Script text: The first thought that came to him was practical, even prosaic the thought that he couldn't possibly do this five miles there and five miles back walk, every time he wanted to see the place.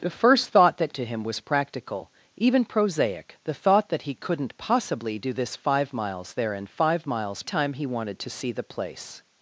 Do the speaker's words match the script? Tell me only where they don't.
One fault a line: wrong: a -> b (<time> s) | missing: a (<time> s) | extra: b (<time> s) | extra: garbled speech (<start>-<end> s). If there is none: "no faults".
missing: came (0.9 s)
missing: back walk every (7.4 s)